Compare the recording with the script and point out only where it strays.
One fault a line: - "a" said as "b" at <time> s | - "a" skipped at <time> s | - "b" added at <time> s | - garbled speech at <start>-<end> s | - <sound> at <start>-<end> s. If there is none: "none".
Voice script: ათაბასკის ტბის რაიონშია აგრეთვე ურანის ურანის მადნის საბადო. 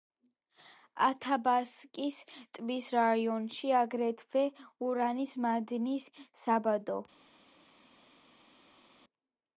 - "ურანის" skipped at 5.3 s